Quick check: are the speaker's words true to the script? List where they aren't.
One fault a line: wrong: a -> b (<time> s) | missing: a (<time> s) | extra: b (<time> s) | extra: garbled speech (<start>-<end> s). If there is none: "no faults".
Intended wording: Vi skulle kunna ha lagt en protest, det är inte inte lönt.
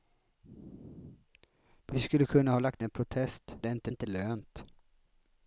no faults